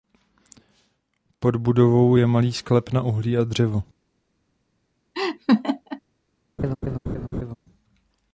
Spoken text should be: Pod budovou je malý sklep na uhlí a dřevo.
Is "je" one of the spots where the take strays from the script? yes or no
no